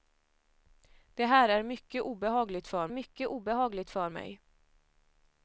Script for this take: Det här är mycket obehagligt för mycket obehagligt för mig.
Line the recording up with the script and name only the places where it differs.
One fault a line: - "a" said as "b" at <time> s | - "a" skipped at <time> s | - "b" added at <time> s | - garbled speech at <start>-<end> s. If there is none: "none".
none